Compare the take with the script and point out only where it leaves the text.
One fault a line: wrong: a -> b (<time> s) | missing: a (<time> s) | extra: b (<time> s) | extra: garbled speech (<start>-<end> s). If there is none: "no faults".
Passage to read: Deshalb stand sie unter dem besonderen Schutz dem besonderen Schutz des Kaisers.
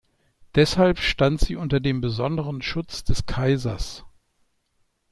missing: dem besonderen Schutz (3.0 s)